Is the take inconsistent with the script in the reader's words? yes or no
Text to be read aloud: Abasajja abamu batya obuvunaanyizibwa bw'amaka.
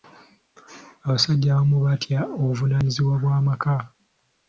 no